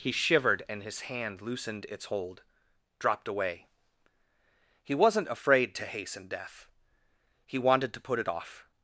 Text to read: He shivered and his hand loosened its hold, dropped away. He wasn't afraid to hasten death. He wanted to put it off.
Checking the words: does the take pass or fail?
pass